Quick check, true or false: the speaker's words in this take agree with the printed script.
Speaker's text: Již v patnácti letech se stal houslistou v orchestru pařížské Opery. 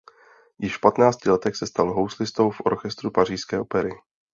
true